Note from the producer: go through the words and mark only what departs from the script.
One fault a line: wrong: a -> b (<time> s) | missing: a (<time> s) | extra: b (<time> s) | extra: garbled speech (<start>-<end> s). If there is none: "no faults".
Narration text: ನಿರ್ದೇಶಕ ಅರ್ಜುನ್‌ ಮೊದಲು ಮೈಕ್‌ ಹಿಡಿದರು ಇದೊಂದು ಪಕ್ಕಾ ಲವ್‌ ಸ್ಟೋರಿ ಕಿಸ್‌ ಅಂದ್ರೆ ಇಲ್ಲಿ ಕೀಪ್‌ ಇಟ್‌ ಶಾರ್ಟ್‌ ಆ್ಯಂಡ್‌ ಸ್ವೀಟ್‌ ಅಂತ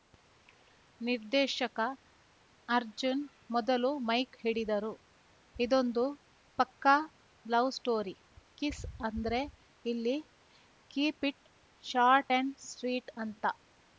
no faults